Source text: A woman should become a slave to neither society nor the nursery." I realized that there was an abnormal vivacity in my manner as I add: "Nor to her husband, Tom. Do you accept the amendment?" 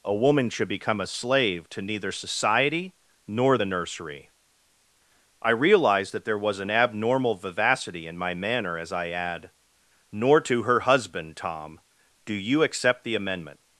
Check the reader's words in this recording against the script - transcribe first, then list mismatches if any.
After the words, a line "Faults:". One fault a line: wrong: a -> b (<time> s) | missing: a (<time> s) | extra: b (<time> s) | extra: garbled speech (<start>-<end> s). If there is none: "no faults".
A woman should become a slave to neither society nor the nursery." I realized that there was an abnormal vivacity in my manner as I add: "Nor to her husband, Tom. Do you accept the amendment?"
Faults:
no faults